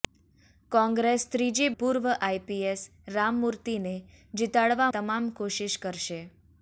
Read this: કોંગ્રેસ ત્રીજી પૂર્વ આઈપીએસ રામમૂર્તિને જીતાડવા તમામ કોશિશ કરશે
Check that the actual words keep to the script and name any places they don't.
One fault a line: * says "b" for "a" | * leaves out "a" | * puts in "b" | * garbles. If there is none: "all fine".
all fine